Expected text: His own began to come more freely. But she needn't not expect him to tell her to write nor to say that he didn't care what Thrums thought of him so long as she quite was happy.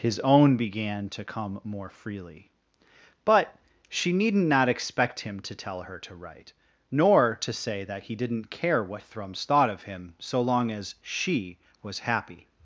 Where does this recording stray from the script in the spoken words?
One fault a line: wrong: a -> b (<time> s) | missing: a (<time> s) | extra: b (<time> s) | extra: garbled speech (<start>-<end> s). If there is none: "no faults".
missing: quite (11.6 s)